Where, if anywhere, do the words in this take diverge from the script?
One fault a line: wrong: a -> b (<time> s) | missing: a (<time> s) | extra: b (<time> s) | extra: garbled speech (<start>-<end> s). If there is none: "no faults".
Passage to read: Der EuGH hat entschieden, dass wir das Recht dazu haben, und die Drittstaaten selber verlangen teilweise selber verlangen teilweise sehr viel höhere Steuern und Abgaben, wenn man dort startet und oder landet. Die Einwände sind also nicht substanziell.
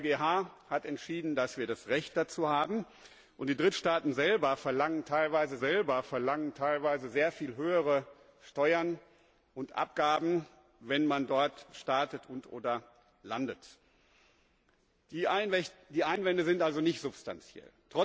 no faults